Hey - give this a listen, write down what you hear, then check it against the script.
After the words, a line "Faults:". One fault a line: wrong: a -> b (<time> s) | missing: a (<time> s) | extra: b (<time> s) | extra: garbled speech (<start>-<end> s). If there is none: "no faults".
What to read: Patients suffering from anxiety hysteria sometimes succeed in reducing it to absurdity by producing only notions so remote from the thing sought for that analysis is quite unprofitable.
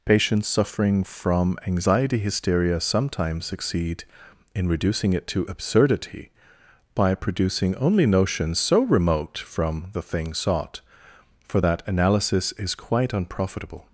Patients suffering from anxiety hysteria sometimes succeed in reducing it to absurdity by producing only notions so remote from the thing sought for that analysis is quite unprofitable.
Faults:
no faults